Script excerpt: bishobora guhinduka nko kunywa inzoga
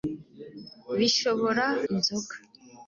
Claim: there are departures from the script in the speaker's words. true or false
true